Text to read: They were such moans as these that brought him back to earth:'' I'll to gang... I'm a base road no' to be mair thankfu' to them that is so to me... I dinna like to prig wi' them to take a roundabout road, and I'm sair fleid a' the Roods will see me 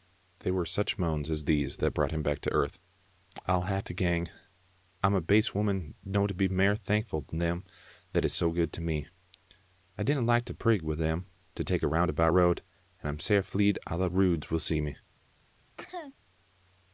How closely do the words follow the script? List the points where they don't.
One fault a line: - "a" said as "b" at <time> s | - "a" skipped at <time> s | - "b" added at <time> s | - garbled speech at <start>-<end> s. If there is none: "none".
- "hae" added at 3.7 s
- "road" said as "woman" at 5.5 s
- "good" added at 8.5 s